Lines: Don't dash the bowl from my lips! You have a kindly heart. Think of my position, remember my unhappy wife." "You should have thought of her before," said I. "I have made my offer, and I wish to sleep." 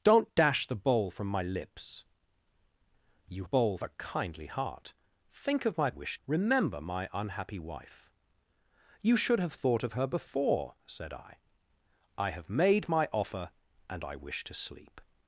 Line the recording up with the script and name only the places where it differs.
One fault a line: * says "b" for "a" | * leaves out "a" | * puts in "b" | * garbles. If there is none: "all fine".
* says "bowl" for "have"
* says "wish" for "position"